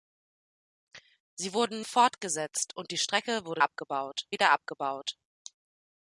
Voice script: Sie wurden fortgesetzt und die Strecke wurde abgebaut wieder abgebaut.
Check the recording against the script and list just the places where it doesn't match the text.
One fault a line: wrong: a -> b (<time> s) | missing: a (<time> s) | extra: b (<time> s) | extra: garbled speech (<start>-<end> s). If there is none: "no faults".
no faults